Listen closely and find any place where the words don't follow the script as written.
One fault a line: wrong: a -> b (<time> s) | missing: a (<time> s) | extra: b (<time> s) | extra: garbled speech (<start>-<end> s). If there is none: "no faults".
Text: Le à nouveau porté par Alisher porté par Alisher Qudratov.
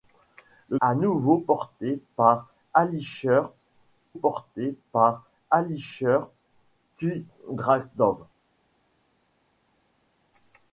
no faults